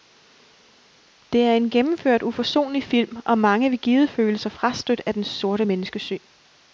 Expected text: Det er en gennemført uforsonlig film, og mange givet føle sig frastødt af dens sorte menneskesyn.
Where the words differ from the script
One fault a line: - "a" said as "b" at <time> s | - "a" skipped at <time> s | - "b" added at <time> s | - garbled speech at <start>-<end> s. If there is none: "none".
- "vil" added at 3.7 s